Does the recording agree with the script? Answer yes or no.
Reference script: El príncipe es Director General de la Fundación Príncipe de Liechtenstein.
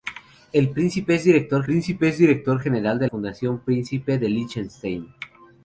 no